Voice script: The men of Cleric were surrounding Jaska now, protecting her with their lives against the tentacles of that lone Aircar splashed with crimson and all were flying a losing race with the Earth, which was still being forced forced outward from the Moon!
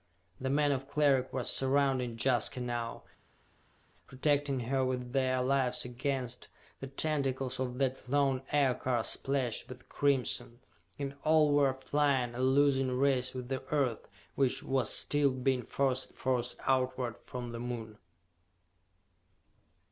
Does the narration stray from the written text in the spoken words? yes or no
no